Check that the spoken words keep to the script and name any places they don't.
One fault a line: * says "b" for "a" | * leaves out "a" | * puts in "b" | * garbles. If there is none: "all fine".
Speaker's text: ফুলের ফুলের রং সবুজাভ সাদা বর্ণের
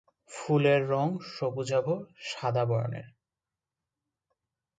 * leaves out "ফুলের"